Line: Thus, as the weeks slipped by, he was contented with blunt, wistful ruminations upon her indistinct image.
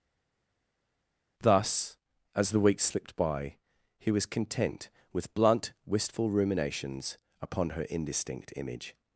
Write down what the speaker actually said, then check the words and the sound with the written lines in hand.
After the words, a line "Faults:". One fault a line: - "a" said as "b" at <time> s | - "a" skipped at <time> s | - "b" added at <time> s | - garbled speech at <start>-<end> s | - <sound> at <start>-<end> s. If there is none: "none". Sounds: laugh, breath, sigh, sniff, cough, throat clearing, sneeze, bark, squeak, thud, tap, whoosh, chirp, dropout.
Thus, as the weeks slipped by, he was content with blunt, wistful ruminations upon her indistinct image.
Faults:
- "contented" said as "content" at 4.2 s